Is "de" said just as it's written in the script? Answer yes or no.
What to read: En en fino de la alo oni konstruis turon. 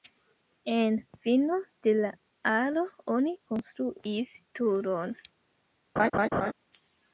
yes